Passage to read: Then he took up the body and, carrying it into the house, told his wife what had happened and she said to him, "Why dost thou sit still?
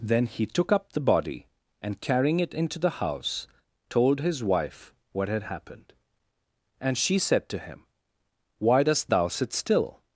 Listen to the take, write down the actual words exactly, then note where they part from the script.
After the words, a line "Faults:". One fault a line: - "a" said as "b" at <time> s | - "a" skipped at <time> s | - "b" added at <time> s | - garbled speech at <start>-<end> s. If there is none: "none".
Then he took up the body and, carrying it into the house, told his wife what had happened and she said to him, "Why dost thou sit still?
Faults:
none